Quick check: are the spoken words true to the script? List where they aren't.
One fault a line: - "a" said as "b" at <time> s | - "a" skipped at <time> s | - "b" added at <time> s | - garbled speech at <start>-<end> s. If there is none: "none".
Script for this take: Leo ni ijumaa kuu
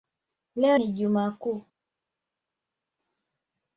none